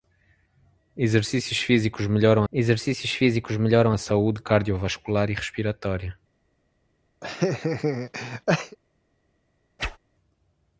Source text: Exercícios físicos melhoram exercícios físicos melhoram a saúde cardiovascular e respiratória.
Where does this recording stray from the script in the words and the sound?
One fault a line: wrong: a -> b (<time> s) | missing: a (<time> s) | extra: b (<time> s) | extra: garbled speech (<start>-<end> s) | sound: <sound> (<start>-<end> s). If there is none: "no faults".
sound: laugh (7.2-8.8 s)
sound: whoosh (9.8-10.0 s)